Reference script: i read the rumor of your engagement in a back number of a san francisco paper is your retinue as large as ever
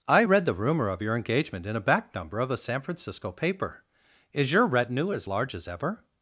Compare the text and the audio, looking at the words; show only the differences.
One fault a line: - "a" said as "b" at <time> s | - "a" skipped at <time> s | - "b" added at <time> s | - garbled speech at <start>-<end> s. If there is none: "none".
none